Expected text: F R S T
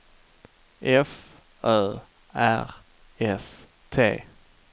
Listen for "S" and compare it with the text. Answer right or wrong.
right